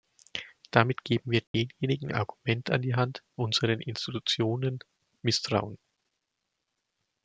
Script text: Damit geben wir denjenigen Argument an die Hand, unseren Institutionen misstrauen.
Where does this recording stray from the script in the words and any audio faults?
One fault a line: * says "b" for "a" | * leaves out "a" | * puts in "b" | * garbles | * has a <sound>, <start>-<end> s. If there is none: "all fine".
* has a dropout, 1.5-1.5 s